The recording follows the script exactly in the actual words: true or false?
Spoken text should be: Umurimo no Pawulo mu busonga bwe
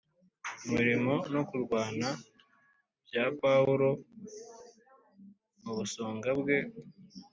false